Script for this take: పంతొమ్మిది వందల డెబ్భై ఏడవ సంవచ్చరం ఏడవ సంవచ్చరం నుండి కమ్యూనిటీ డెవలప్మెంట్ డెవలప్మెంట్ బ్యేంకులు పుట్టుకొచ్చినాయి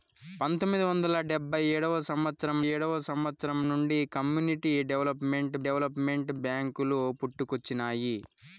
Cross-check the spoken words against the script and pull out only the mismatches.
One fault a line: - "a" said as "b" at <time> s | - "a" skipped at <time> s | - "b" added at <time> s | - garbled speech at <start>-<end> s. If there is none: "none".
none